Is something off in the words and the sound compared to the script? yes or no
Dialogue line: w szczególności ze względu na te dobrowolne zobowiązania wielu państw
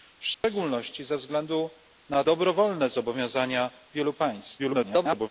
yes